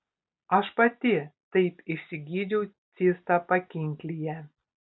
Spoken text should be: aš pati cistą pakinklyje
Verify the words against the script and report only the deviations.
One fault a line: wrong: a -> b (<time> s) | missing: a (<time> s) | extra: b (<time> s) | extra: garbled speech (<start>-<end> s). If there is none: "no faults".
extra: taip išsigydžiau (1.6 s)